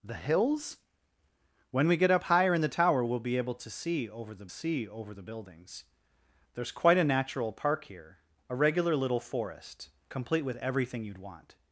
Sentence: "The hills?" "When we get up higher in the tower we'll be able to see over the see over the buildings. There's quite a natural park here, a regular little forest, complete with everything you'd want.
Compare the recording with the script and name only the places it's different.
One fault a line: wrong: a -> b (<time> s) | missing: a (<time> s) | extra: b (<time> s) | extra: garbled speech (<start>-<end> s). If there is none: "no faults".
no faults